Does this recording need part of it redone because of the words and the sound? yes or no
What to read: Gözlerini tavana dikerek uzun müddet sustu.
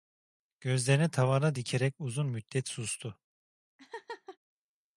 yes